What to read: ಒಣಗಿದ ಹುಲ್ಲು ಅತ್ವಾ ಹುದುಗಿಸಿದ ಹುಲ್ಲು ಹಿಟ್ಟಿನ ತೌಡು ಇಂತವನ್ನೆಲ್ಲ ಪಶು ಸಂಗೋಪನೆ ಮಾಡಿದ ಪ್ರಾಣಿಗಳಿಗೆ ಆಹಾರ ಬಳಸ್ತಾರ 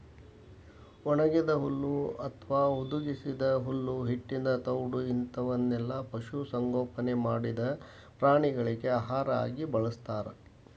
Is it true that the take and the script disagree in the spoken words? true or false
true